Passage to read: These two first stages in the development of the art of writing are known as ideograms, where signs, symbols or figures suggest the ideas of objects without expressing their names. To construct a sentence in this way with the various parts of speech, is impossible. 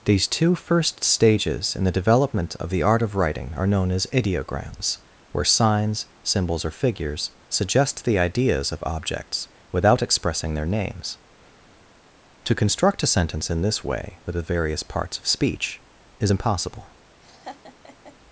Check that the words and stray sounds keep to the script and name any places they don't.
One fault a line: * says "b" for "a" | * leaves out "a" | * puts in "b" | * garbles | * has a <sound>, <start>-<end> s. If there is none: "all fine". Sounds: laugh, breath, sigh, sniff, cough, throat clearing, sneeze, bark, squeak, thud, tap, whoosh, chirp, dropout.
* has a laugh, 17.2-18.2 s